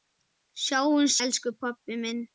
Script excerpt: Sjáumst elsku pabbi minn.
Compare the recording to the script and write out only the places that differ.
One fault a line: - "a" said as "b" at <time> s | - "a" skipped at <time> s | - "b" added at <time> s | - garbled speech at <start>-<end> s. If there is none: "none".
none